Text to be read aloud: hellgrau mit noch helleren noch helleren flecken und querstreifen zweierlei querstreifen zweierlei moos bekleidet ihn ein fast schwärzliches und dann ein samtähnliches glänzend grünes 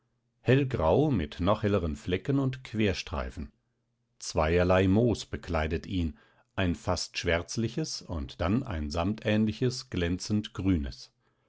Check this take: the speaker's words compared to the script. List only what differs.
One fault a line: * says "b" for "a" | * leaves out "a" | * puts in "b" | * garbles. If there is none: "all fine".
* leaves out "noch helleren"
* leaves out "querstreifen zweierlei"